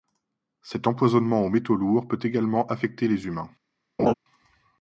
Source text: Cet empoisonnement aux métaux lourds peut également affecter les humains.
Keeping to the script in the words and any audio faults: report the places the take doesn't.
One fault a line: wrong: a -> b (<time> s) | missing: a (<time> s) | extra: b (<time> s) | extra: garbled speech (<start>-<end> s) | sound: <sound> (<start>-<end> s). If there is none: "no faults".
sound: laugh (4.0-4.1 s)